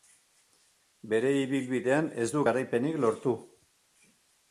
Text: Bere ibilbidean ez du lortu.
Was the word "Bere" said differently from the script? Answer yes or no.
no